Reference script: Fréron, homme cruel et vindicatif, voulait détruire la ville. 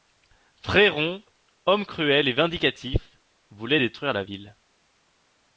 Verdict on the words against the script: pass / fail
pass